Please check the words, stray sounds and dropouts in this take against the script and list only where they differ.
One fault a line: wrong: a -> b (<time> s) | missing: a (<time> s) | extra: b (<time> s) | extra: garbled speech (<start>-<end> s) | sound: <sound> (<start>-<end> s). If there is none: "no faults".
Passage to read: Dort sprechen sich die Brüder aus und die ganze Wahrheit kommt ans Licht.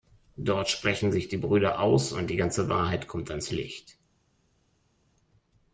no faults